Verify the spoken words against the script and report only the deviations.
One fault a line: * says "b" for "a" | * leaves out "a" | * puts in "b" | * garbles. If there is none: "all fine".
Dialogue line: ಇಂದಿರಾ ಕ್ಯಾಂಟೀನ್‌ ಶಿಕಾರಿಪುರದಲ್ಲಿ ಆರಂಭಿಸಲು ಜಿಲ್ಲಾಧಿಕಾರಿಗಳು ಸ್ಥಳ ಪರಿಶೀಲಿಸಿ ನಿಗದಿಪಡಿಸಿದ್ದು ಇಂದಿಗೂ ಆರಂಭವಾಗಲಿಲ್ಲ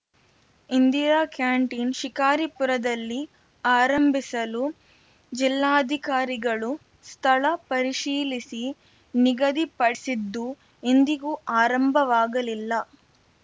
all fine